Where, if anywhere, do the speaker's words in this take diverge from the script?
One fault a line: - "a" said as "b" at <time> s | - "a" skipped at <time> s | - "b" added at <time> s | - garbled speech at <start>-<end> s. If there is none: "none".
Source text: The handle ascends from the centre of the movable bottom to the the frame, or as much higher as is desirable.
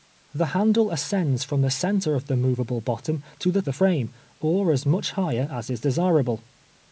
none